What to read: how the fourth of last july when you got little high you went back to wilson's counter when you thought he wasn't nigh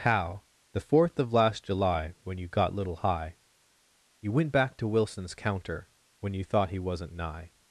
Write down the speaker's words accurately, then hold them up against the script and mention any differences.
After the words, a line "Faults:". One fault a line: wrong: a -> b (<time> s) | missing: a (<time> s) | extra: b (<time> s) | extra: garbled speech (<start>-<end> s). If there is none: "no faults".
how the fourth of last july when you got little high you went back to wilson's counter when you thought he wasn't nigh
Faults:
no faults